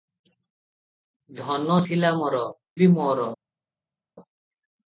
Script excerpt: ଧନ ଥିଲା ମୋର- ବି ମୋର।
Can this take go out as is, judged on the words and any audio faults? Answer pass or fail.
pass